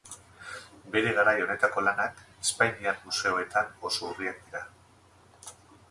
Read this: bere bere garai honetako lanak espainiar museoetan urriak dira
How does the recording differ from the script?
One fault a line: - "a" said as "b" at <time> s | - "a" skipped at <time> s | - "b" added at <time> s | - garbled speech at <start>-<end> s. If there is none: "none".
- "bere" skipped at 1.1 s
- "oso" added at 3.9 s